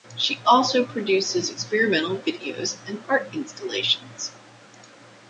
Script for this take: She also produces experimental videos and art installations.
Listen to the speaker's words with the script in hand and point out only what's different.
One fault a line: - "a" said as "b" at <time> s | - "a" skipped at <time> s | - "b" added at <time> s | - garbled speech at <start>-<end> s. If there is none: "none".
none